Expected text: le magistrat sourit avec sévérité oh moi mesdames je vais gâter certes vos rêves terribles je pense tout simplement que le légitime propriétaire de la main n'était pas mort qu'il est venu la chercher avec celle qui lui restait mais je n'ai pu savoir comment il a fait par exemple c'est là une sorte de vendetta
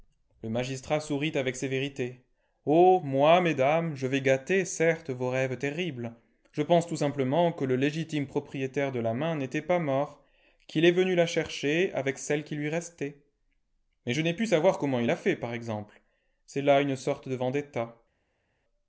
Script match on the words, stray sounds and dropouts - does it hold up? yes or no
yes